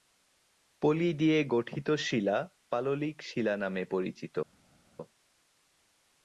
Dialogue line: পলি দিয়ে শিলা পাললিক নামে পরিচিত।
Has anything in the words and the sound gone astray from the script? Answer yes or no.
yes